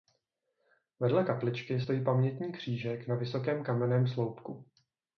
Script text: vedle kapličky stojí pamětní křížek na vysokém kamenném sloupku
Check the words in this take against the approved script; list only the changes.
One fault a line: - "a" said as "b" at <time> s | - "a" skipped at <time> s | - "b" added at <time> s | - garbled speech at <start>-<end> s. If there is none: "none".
none